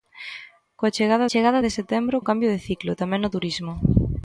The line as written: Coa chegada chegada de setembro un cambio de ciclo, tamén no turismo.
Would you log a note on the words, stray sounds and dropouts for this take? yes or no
no